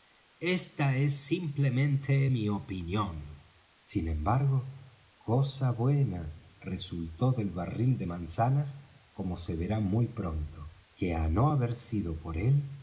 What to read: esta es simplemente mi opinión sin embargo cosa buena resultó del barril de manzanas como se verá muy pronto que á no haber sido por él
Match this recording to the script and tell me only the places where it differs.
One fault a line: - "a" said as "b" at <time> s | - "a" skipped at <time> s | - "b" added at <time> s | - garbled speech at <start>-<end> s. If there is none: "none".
none